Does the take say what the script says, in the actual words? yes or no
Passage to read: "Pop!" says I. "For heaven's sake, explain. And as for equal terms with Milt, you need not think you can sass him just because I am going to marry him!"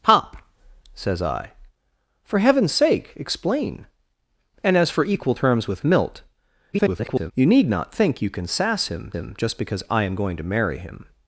no